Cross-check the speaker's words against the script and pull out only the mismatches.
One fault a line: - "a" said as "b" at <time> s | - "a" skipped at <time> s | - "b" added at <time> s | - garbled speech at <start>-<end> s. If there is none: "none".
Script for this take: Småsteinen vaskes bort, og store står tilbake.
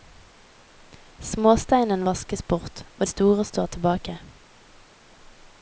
none